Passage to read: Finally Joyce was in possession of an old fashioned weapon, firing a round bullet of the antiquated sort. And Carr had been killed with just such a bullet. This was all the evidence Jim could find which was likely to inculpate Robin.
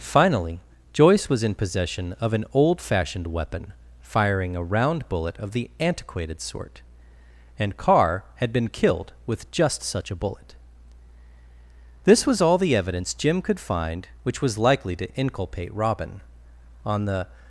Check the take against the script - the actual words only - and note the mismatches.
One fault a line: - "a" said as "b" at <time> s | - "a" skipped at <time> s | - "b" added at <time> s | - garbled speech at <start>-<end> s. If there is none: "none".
- "On the" added at 16.8 s